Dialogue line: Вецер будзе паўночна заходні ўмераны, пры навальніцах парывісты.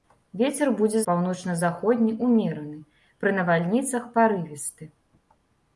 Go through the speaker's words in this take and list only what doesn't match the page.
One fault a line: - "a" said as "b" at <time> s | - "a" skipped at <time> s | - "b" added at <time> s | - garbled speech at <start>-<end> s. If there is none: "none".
none